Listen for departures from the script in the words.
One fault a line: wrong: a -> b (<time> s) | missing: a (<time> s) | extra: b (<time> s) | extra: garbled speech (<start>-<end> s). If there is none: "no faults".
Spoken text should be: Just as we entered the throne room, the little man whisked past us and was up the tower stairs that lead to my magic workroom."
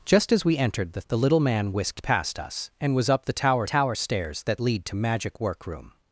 missing: throne room (1.0 s)
extra: tower (3.6 s)
missing: my (5.0 s)